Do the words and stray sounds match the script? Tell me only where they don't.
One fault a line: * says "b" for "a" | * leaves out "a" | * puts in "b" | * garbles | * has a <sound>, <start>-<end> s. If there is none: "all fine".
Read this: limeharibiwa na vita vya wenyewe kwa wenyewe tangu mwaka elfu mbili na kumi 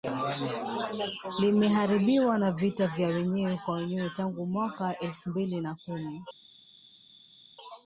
all fine